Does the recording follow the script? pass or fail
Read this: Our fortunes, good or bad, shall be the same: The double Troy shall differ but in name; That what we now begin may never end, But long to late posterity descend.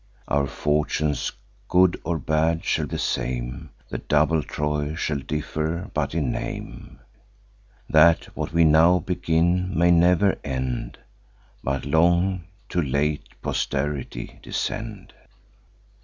fail